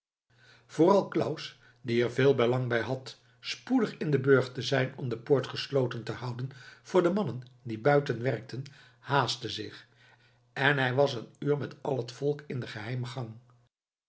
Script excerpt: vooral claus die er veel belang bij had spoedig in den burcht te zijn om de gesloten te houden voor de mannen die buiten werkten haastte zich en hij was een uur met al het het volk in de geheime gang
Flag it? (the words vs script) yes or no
yes